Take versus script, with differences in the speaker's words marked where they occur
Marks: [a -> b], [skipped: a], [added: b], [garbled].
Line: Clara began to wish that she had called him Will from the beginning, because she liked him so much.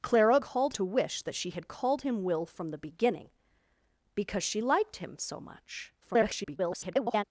Clara [began -> called] to wish that she had called him Will from the beginning, because she liked him so much. [garbled]